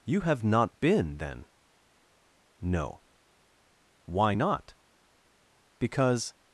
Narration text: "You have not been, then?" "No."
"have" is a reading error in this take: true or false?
false